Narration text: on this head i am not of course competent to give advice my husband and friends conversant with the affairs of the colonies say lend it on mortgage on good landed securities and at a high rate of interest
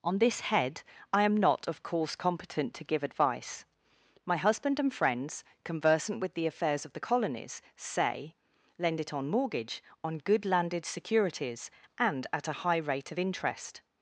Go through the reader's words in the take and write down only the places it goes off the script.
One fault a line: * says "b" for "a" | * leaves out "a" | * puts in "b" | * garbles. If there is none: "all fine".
all fine